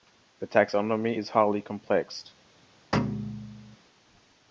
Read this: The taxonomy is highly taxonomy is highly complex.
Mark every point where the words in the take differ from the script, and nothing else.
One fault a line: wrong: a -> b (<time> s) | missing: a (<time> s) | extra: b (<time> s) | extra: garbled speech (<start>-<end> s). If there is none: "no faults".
missing: taxonomy is highly (1.6 s)